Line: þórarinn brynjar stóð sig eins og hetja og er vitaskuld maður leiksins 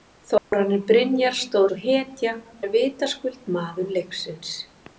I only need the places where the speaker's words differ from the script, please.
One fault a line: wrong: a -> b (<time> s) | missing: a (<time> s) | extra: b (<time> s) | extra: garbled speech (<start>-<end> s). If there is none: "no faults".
missing: sig eins (1.7 s)
missing: og (2.4 s)